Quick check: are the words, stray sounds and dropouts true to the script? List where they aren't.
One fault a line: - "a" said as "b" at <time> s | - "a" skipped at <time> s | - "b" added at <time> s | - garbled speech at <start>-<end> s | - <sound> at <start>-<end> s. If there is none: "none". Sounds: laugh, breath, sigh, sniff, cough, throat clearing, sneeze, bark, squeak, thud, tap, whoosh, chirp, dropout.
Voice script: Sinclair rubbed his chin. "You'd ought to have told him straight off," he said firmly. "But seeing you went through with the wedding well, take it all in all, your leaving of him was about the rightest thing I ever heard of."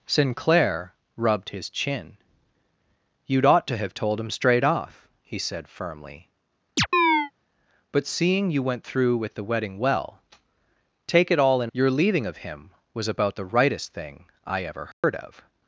- chirp at 6.8-7.3 s
- "all" skipped at 11.7 s
- dropout at 14.9-15.0 s